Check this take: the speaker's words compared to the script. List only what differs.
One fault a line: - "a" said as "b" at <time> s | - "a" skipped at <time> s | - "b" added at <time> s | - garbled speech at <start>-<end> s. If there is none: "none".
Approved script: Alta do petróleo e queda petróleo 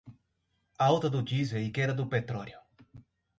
- "petróleo" said as "diesel" at 1.2 s
- "do" added at 1.9 s